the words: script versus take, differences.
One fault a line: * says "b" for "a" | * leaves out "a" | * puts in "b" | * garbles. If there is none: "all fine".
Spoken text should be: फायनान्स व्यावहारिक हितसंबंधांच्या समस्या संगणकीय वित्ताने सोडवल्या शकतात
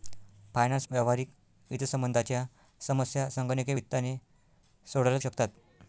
all fine